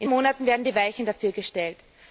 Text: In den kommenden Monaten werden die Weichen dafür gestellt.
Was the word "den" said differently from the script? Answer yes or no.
yes